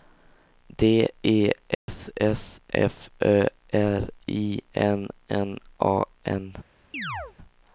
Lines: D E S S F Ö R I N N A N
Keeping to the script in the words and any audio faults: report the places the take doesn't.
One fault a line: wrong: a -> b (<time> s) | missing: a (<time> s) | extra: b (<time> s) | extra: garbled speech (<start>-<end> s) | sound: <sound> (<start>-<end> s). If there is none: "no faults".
sound: dropout (1.7-1.9 s)
sound: chirp (6.9-7.3 s)